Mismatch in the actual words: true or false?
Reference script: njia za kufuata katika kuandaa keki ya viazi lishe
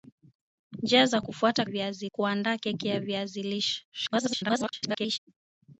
true